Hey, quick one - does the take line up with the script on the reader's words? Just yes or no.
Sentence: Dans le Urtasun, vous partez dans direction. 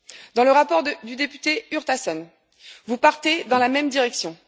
no